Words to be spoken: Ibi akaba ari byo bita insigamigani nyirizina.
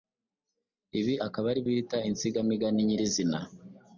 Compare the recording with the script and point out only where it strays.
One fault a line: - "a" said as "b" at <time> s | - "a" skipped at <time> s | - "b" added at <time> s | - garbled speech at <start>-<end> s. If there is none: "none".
- "byo" skipped at 1.6 s